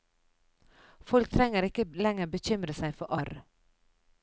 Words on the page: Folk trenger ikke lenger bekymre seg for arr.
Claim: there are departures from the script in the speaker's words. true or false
false